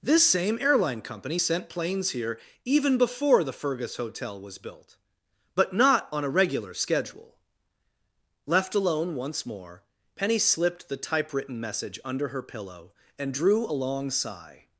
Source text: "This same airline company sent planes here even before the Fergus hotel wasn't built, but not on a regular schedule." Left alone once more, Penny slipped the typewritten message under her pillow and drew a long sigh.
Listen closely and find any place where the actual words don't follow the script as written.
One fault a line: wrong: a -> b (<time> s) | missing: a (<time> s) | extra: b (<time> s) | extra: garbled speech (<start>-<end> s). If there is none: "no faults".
wrong: wasn't -> was (4.4 s)